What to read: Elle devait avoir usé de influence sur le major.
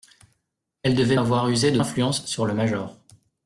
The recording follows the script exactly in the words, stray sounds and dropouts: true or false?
true